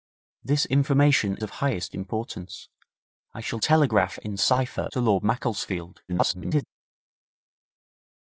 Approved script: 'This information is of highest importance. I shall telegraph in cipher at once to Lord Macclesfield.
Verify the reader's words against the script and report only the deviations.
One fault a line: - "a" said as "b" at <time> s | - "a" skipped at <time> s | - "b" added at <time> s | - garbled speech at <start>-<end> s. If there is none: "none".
- "is" skipped at 1.4 s
- "at once" skipped at 4.9 s
- garbled speech at 6.1-6.7 s